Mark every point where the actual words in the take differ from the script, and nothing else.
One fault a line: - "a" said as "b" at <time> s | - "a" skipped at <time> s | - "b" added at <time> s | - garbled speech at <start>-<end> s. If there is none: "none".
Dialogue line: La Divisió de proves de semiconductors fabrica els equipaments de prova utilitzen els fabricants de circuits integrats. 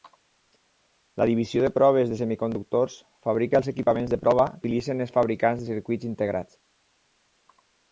none